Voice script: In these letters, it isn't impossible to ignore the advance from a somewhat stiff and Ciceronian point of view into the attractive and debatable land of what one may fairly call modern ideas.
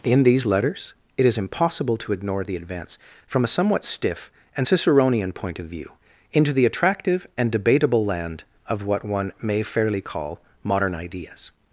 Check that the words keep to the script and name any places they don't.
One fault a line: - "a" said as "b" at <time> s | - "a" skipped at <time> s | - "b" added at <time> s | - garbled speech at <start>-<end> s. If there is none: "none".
- "isn't" said as "is" at 1.2 s